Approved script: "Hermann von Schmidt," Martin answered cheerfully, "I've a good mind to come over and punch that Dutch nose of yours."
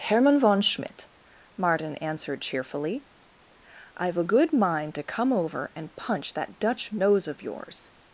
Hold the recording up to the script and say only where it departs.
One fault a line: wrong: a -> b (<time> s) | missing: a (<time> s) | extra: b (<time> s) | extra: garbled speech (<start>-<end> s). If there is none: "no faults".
no faults